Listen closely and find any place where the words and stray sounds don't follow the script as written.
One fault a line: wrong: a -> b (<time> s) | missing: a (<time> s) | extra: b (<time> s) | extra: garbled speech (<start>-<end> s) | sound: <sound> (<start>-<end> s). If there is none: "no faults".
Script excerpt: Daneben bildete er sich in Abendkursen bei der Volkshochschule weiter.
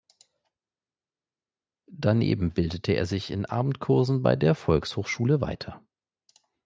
no faults